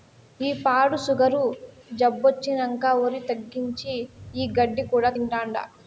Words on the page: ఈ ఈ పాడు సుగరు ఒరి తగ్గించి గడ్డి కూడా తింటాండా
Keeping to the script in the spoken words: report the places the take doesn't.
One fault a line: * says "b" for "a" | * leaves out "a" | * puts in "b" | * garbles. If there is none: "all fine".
* leaves out "ఈ"
* puts in "జబ్బొచ్చినంకా"
* puts in "ఈ"